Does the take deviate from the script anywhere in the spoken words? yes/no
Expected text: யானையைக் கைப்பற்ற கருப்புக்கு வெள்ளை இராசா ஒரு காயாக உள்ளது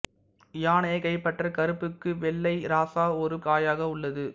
no